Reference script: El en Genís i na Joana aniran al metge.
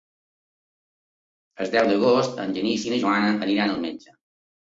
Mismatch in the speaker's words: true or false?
true